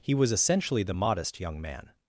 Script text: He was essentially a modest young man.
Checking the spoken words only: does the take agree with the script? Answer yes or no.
no